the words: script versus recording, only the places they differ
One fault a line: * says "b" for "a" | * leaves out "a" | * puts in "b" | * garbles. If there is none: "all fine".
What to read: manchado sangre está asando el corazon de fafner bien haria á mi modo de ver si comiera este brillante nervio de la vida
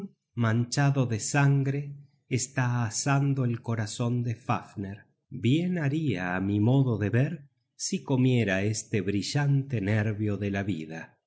* puts in "de"